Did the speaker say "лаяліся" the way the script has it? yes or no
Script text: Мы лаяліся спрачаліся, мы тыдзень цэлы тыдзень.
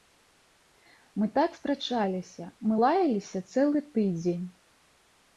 no